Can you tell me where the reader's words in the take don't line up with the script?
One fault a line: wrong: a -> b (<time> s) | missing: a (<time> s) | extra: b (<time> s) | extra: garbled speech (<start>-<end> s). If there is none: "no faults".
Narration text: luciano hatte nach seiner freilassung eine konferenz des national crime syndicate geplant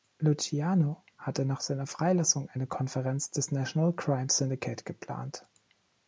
no faults